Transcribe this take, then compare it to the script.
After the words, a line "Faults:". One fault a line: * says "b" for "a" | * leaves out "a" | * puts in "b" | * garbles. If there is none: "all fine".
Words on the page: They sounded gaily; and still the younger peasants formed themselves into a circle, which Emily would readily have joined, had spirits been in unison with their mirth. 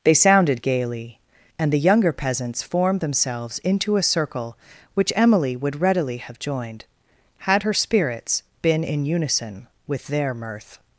They sounded gaily; and the younger peasants formed themselves into a circle, which Emily would readily have joined, had her spirits been in unison with their mirth.
Faults:
* leaves out "still"
* puts in "her"